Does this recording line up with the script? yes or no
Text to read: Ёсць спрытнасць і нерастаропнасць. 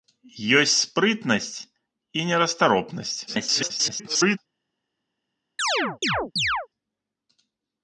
no